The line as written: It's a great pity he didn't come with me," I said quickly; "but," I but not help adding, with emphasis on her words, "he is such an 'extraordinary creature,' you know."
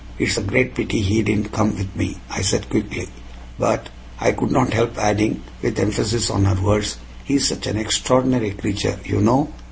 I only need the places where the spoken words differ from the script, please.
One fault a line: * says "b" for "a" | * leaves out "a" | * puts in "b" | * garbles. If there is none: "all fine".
* says "could" for "but"